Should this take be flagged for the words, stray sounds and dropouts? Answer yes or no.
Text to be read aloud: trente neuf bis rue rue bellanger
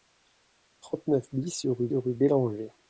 no